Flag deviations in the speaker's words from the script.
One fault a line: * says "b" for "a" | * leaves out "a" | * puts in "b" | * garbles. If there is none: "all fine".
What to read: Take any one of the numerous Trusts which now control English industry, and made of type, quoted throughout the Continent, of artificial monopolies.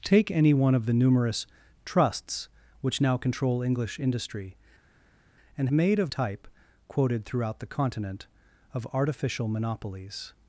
all fine